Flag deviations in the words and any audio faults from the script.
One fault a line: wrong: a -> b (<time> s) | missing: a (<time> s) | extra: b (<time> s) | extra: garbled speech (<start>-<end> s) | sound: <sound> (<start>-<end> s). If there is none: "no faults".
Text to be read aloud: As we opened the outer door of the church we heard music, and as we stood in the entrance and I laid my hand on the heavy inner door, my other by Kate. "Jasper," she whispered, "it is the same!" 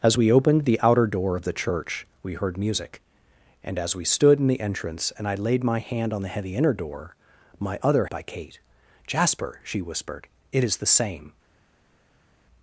no faults